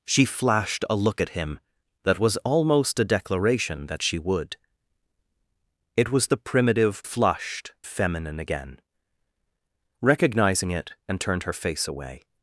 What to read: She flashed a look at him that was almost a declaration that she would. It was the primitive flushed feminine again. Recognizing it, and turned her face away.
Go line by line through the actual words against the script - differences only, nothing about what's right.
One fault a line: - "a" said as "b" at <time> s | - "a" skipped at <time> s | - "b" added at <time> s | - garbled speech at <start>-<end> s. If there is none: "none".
none